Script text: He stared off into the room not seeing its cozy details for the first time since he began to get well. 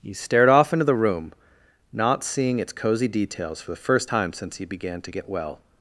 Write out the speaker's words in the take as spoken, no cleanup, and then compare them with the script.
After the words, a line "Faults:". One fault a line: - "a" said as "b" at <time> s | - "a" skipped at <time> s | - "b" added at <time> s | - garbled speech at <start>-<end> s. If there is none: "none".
He stared off into the room not seeing its cozy details for the first time since he began to get well.
Faults:
none